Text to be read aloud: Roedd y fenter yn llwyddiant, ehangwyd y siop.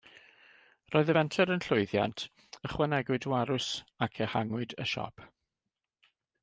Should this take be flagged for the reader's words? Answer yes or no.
yes